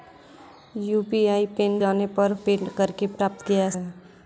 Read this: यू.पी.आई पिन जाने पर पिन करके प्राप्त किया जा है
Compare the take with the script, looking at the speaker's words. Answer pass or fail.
pass